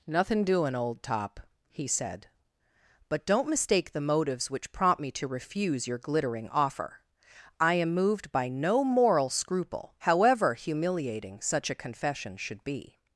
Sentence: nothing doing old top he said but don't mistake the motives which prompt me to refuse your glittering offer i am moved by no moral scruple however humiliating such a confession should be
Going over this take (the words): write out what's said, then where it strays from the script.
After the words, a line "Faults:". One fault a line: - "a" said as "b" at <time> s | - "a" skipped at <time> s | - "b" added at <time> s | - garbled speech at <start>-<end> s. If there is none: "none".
nothing doing old top he said but don't mistake the motives which prompt me to refuse your glittering offer i am moved by no moral scruple however humiliating such a confession should be
Faults:
none